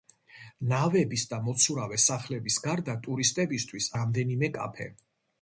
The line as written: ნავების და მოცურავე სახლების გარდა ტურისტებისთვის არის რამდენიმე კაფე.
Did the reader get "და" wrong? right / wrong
right